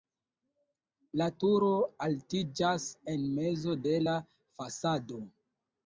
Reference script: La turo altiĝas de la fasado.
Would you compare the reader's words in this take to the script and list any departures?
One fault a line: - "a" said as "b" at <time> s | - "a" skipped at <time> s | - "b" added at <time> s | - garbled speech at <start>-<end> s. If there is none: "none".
- "en mezo" added at 3.1 s